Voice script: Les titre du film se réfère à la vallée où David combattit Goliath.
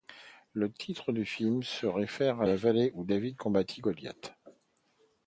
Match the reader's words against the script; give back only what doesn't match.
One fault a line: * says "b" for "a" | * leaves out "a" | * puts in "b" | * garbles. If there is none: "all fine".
* says "Le" for "Les"